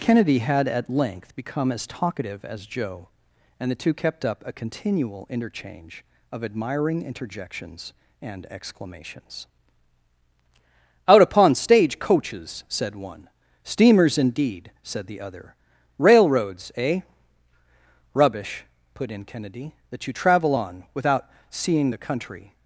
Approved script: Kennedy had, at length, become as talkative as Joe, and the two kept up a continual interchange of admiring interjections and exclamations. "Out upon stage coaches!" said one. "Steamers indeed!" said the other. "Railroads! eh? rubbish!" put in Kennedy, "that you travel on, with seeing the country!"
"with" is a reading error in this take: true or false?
true